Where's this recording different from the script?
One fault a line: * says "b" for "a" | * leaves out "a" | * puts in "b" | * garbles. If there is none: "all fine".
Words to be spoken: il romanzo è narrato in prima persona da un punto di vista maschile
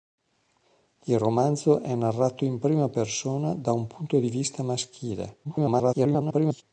* garbles